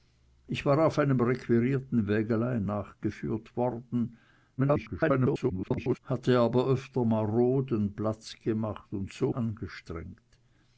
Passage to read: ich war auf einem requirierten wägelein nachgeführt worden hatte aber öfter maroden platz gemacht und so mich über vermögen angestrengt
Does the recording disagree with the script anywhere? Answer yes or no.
yes